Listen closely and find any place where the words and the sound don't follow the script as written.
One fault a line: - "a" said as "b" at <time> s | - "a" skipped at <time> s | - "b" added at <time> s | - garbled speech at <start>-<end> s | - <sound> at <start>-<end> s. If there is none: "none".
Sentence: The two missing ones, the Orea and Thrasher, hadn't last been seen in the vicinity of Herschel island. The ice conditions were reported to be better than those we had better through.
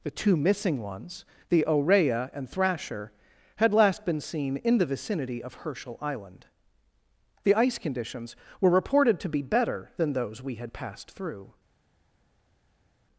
- "hadn't" said as "had" at 3.6 s
- "better" said as "passed" at 10.7 s